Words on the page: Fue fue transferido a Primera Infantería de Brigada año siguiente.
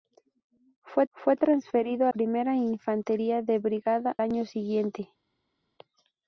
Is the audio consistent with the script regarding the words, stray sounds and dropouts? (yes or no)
yes